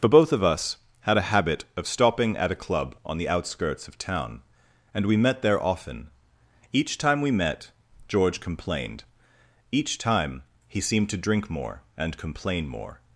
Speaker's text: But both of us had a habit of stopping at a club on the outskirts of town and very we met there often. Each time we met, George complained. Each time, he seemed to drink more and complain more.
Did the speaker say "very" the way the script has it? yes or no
no